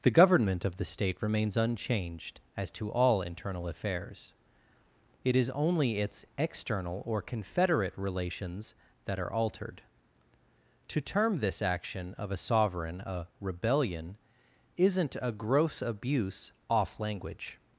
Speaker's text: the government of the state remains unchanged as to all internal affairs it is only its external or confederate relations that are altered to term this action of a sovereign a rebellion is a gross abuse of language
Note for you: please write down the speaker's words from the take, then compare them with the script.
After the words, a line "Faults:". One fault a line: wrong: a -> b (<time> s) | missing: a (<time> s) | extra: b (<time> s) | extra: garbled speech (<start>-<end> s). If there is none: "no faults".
the government of the state remains unchanged as to all internal affairs it is only its external or confederate relations that are altered to term this action of a sovereign a rebellion isn't a gross abuse off language
Faults:
wrong: is -> isn't (14.8 s)
wrong: of -> off (16.7 s)